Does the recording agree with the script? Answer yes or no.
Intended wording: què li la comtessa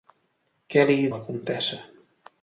yes